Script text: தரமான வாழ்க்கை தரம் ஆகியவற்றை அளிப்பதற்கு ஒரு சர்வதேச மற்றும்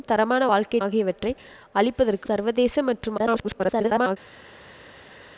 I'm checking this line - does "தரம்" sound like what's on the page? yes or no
no